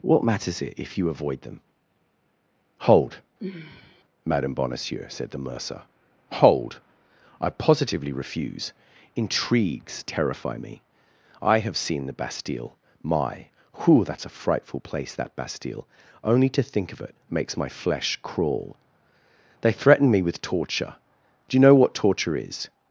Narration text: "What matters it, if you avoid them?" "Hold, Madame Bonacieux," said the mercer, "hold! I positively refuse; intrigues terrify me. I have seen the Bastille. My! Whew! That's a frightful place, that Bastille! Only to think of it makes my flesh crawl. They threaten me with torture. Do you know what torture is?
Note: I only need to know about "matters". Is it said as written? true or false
true